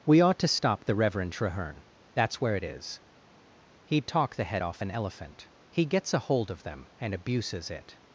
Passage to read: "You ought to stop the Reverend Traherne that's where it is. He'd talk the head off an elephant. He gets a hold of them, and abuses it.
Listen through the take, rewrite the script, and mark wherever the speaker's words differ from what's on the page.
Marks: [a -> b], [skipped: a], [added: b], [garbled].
["You -> We] ought to stop the Reverend Traherne that's where it is. He'd talk the head off an elephant. He gets a hold of them, and abuses it.